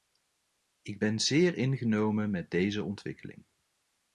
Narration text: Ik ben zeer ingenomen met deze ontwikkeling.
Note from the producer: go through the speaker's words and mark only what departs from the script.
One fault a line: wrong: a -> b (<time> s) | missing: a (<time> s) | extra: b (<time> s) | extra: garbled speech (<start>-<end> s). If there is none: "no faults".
no faults